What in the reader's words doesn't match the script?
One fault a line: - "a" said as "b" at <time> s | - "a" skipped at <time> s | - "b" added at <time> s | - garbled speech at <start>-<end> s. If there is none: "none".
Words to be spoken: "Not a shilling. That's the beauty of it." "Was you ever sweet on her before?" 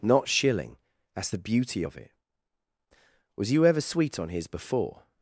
- "a" skipped at 0.3 s
- "her" said as "his" at 4.3 s